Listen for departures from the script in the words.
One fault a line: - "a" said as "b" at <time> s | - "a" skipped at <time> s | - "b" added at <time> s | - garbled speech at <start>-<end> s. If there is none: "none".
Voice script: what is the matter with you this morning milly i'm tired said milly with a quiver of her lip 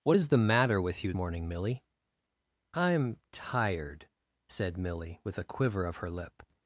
- "this" skipped at 1.1 s